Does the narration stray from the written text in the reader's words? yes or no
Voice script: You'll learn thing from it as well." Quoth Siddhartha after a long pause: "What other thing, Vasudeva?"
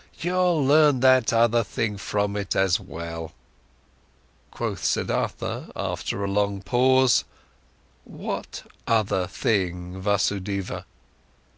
yes